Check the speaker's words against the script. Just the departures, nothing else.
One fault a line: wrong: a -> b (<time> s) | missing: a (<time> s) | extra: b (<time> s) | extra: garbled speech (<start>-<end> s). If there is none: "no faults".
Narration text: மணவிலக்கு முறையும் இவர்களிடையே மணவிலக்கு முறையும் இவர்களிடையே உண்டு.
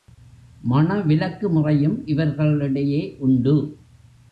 missing: மணவிலக்கு முறையும் இவர்களிடையே (3.2 s)